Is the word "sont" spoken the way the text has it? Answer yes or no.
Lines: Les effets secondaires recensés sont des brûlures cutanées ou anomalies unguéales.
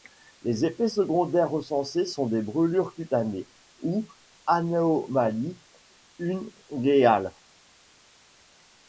yes